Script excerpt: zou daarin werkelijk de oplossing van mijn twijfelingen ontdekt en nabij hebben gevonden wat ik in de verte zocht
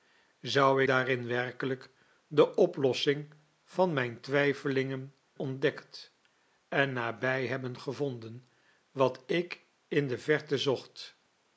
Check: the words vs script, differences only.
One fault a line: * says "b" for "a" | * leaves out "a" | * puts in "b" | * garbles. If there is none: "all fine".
all fine